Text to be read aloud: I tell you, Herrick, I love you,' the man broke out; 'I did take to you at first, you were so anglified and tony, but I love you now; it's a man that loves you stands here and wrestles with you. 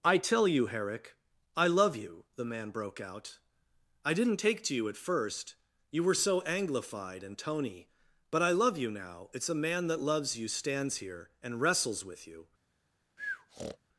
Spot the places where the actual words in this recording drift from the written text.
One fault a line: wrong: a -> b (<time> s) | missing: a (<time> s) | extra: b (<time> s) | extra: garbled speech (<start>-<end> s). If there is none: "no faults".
wrong: did -> didn't (4.1 s)